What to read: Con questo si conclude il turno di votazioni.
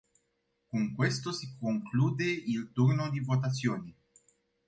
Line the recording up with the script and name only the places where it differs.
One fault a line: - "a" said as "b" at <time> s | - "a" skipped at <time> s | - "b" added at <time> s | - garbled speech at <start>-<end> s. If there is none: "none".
none